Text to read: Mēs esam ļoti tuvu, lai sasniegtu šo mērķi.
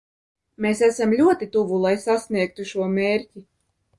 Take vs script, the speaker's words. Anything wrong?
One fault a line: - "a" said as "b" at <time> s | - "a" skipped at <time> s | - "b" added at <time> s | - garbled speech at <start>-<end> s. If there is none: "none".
none